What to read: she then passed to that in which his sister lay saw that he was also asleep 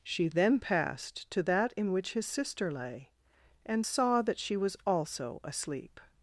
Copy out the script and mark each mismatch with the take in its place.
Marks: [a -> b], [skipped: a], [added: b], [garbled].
she then passed to that in which his sister lay [added: and] saw that [he -> she] was also asleep